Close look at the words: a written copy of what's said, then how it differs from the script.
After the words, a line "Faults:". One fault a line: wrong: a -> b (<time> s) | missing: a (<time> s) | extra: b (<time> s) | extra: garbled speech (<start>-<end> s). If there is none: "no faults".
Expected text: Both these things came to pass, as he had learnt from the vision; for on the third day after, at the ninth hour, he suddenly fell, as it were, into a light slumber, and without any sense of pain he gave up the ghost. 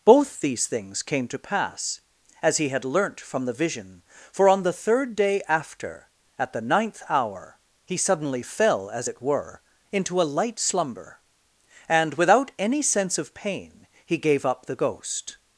Both these things came to pass, as he had learnt from the vision; for on the third day after, at the ninth hour, he suddenly fell, as it were, into a light slumber, and without any sense of pain he gave up the ghost.
Faults:
no faults